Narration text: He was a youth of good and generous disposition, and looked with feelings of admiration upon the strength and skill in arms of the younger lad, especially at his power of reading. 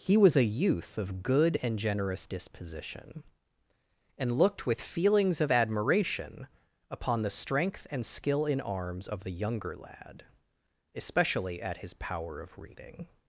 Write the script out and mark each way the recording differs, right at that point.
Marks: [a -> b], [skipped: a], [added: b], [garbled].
He was a youth of good and generous disposition, and looked with feelings of admiration upon the strength and skill in arms of the younger lad, especially at his power of reading.